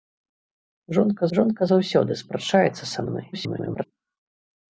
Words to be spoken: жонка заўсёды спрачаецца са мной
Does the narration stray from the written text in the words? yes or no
yes